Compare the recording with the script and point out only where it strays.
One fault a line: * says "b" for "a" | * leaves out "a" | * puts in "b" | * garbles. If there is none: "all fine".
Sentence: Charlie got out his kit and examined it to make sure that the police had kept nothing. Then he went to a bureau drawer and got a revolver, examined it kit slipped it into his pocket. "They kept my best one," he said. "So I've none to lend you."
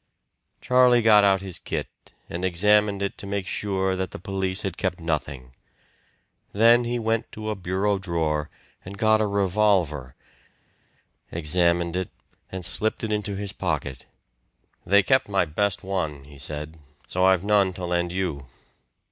* says "and" for "kit"